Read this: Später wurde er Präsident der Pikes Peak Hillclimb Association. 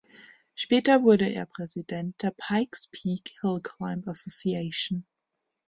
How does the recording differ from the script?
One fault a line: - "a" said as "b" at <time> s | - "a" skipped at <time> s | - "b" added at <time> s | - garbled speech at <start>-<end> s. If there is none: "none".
none